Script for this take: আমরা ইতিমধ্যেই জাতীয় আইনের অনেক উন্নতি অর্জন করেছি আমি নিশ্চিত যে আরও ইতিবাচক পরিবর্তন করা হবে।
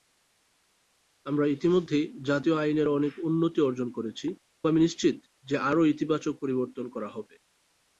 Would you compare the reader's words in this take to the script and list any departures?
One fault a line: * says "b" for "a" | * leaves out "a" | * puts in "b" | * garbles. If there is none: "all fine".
all fine